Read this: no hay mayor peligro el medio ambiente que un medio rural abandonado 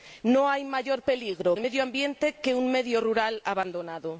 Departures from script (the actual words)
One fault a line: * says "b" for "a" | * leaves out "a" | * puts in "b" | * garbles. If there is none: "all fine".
all fine